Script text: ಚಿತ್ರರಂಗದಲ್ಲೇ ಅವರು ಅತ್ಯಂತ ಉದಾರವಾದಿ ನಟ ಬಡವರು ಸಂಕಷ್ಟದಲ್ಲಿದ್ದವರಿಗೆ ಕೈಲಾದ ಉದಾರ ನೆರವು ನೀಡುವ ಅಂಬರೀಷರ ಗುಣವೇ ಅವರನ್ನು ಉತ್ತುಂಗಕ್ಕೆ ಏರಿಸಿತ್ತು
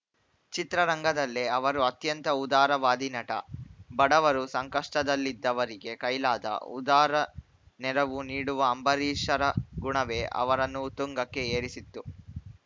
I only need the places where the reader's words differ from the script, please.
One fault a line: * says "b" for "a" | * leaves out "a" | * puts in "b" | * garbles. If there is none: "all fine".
all fine